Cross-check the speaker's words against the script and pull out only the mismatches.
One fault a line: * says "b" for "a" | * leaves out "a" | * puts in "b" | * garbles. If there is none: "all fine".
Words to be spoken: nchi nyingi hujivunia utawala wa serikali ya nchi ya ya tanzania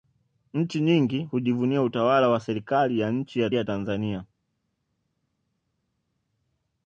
all fine